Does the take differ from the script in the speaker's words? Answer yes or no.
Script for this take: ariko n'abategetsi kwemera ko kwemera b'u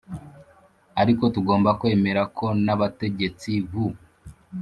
yes